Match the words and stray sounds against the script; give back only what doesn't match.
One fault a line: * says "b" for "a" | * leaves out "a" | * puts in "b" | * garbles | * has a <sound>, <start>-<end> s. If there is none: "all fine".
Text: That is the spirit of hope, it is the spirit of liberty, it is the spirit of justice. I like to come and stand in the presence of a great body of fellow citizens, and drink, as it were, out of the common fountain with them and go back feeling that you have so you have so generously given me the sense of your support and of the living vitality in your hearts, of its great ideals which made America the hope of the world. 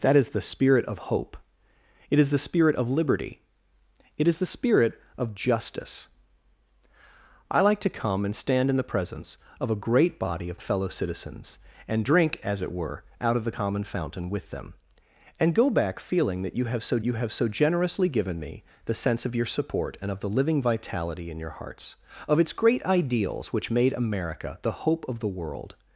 all fine